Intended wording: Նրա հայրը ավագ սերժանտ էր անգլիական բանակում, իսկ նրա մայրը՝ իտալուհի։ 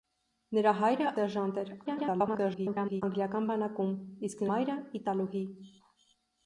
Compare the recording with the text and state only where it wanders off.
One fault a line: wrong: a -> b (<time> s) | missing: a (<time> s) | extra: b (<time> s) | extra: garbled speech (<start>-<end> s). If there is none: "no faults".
missing: ավագ (1.1 s)
extra: garbled speech (1.9-3.0 s)
missing: նրա (4.5 s)